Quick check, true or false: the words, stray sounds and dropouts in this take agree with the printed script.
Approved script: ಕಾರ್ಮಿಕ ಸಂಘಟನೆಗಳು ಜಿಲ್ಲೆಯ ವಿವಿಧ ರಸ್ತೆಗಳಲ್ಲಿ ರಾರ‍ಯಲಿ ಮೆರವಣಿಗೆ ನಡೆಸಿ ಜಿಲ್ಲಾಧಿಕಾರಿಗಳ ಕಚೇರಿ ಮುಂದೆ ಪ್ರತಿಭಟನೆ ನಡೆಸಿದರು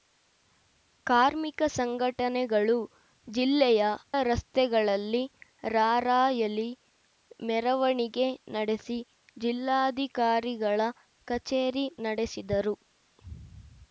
false